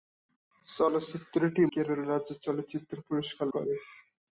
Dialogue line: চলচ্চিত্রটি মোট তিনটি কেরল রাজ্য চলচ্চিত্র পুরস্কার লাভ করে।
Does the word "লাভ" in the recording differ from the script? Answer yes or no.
yes